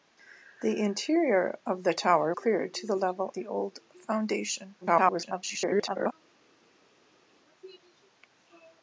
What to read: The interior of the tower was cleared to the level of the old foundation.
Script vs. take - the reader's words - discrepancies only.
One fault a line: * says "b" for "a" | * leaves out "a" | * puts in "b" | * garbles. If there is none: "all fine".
* leaves out "was"
* leaves out "of"
* garbles